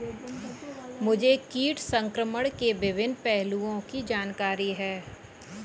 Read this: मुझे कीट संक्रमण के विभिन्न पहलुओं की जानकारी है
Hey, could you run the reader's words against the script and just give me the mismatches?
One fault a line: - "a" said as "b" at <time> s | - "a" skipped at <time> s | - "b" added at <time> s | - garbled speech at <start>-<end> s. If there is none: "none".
none